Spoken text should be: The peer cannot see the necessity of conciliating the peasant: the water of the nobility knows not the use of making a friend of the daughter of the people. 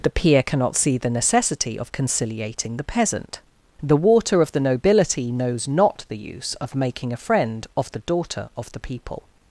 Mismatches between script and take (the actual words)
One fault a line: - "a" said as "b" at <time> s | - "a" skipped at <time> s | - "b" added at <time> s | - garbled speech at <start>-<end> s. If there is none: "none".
none